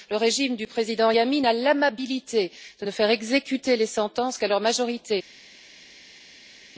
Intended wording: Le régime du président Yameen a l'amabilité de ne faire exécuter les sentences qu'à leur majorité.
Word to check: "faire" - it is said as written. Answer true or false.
true